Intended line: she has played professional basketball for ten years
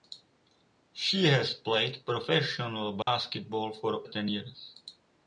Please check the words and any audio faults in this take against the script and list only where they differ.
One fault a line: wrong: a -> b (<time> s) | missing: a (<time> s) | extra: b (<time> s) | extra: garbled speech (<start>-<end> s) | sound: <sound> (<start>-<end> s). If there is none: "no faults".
sound: dropout (3.0-3.1 s)